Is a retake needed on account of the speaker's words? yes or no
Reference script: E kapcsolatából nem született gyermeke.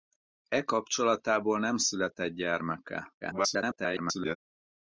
yes